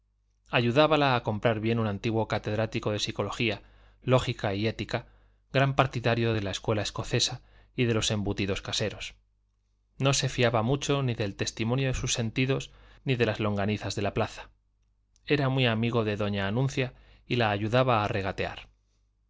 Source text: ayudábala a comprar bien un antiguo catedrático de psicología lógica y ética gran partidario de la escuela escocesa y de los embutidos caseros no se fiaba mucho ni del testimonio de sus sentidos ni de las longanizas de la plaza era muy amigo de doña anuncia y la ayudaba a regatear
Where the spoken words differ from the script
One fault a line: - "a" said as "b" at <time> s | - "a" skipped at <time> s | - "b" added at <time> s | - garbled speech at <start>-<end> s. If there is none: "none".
none